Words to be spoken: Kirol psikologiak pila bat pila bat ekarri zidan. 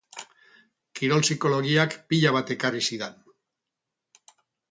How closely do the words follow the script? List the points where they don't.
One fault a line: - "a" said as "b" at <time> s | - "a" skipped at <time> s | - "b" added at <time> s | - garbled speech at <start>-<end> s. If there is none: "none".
- "pila bat" skipped at 2.5 s